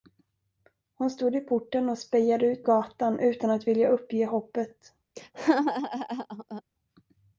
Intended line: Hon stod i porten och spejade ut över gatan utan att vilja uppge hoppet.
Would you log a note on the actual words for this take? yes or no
yes